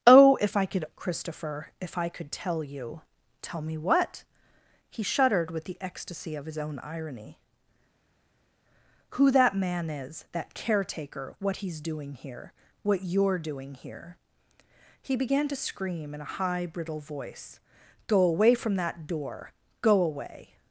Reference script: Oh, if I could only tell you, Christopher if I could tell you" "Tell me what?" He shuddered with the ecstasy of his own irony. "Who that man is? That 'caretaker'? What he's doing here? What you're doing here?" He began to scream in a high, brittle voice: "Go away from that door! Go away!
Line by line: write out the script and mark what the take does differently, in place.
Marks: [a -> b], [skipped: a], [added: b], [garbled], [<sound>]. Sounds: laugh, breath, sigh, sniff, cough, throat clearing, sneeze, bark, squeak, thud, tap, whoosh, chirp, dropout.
Oh, if I could [skipped: only tell you,] Christopher if I could tell you" "Tell me what?" He shuddered with the ecstasy of his own irony. "Who that man is? That 'caretaker'? What he's doing here? What you're doing here?" He began to scream in a high, brittle voice: "Go away from that door! Go away!